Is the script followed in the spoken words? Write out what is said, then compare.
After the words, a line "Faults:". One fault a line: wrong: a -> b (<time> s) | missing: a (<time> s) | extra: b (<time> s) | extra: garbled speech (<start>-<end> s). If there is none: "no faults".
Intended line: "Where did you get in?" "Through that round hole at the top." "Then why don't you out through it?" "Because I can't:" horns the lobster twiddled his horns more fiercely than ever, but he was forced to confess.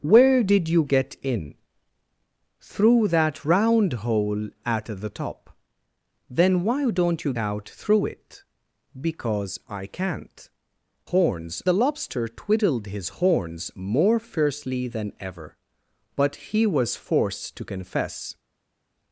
"Where did you get in?" "Through that round hole at the top." "Then why don't you out through it?" "Because I can't:" horns the lobster twiddled his horns more fiercely than ever, but he was forced to confess.
Faults:
no faults